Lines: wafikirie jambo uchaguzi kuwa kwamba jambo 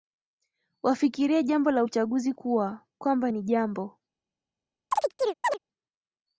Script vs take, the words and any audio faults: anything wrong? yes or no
yes